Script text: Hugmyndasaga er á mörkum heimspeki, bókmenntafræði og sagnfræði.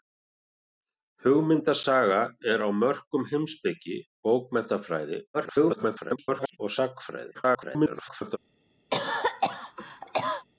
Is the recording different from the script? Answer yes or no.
yes